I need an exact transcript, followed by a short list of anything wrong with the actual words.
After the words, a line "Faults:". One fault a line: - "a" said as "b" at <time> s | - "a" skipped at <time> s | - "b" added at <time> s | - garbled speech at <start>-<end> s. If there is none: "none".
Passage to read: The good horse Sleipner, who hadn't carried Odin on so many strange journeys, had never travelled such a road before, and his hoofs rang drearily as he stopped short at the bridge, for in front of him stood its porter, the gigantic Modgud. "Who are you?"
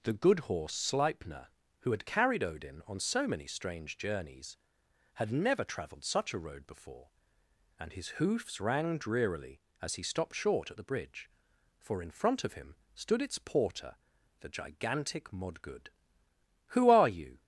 The good horse Sleipner, who had carried Odin on so many strange journeys, had never travelled such a road before, and his hoofs rang drearily as he stopped short at the bridge, for in front of him stood its porter, the gigantic Modgud. "Who are you?"
Faults:
- "hadn't" said as "had" at 1.9 s